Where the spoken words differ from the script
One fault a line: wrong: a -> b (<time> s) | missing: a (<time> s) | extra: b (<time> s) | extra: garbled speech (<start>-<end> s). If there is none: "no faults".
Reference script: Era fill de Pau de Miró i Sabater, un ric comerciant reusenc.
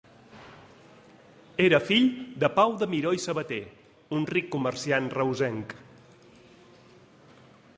no faults